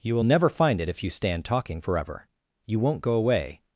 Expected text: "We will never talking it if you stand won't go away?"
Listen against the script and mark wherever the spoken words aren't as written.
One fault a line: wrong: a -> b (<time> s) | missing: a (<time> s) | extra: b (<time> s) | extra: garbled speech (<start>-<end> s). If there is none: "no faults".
wrong: We -> You (0.0 s)
wrong: talking -> find (0.5 s)
extra: talking forever You (1.4 s)